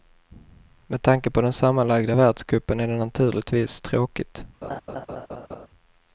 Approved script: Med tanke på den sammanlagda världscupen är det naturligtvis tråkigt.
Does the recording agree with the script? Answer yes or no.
yes